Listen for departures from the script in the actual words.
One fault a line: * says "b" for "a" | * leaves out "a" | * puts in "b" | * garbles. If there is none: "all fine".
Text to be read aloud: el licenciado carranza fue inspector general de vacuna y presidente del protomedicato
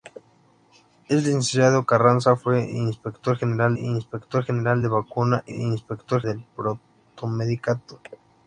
* puts in "inspector general"
* says "inspector" for "presidente"